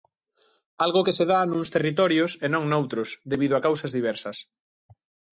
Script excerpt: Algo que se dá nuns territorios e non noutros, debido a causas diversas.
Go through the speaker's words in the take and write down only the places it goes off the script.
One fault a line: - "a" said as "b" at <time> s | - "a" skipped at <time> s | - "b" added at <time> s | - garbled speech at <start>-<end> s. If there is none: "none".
none